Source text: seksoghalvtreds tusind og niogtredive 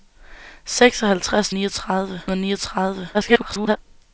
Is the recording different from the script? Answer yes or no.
yes